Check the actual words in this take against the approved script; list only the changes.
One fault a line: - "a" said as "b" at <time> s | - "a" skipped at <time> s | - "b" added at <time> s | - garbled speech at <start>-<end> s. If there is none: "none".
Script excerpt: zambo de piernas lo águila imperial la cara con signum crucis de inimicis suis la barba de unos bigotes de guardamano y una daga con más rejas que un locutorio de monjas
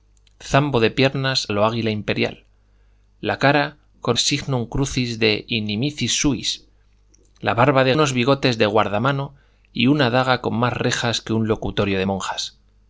none